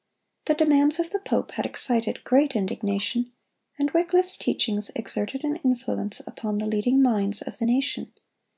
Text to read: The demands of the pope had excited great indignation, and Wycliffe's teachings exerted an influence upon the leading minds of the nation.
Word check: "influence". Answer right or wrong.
right